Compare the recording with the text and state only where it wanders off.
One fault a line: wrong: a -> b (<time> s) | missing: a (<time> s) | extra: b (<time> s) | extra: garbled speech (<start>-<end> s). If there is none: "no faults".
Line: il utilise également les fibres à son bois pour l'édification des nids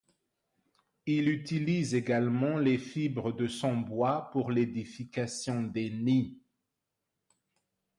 wrong: à -> de (3.3 s)